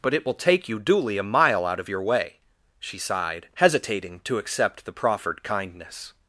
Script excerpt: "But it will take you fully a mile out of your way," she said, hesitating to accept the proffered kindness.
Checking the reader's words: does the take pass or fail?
fail